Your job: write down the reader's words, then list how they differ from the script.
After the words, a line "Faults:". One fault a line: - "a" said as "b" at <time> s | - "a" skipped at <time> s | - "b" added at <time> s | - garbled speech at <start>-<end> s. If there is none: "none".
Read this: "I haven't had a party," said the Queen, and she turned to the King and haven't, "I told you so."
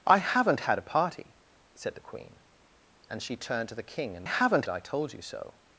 "I haven't had a party," said the Queen, and she turned to the King and haven't, "I told you so."
Faults:
none